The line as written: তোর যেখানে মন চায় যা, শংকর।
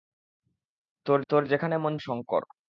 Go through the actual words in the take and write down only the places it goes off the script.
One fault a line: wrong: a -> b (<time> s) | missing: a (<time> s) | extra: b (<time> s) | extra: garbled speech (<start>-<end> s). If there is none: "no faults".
extra: তোর (1.3 s)
missing: চায় যা (1.9 s)